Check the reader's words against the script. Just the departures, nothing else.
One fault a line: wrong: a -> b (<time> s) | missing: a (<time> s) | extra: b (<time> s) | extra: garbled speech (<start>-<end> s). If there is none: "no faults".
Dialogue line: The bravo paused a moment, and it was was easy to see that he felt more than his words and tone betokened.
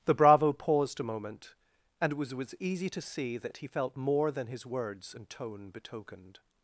no faults